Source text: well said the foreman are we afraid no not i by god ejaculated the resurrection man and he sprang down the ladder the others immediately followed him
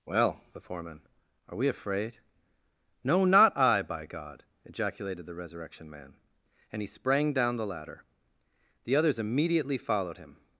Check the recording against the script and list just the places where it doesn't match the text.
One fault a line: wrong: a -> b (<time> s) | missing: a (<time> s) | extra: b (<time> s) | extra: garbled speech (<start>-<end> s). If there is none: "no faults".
missing: said (0.4 s)